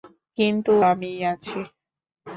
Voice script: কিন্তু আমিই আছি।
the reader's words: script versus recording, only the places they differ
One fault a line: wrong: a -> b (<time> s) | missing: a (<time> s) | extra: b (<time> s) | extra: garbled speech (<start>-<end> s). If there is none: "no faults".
no faults